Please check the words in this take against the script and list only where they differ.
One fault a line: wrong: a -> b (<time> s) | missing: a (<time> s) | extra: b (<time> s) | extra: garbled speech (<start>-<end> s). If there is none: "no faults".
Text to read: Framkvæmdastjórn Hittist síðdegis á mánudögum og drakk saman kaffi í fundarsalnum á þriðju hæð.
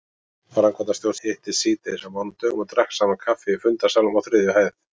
no faults